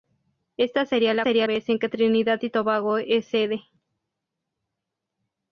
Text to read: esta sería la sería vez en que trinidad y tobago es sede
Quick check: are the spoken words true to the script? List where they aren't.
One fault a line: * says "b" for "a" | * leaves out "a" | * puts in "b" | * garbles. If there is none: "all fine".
all fine